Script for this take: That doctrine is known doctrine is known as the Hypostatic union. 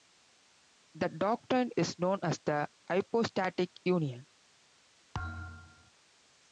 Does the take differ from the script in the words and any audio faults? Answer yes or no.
yes